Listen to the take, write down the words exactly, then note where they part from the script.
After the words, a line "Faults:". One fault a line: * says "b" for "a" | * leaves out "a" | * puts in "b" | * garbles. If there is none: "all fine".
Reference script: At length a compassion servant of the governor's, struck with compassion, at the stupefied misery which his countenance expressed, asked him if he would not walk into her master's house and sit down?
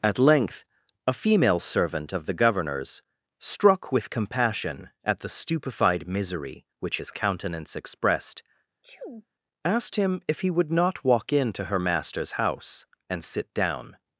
At length a female servant of the governor's, struck with compassion, at the stupefied misery which his countenance expressed, asked him if he would not walk into her master's house and sit down?
Faults:
* says "female" for "compassion"